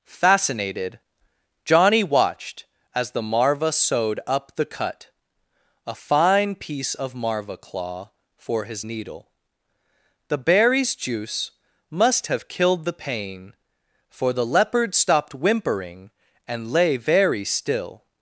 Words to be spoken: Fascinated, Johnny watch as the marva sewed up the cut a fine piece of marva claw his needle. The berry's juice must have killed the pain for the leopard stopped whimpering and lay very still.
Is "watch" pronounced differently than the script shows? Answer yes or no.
yes